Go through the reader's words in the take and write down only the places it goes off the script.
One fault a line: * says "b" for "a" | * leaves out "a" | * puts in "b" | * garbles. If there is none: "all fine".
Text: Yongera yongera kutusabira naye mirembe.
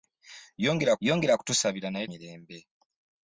all fine